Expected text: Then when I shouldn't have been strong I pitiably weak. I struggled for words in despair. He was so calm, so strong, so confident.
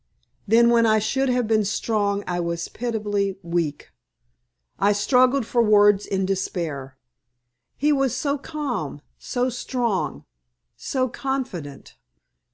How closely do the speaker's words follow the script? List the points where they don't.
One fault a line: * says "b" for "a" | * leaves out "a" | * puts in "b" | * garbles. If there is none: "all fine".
* says "should" for "shouldn't"
* puts in "was"